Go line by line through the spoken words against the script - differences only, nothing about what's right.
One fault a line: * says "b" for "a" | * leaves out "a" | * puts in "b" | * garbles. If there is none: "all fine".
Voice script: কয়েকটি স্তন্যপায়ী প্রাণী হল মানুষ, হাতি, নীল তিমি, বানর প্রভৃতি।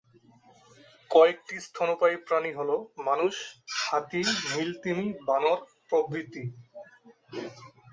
all fine